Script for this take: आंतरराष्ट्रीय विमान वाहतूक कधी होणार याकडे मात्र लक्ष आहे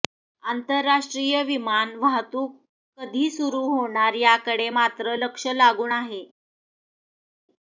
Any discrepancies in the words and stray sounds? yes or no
yes